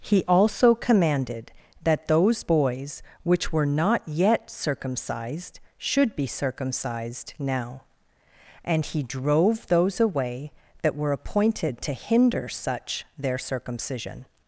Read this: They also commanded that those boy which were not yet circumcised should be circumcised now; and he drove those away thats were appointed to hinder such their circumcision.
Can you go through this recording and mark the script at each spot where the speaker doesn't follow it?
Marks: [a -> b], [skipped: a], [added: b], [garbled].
[They -> He] also commanded that those [boy -> boys] which were not yet circumcised should be circumcised now; and he drove those away [thats -> that] were appointed to hinder such their circumcision.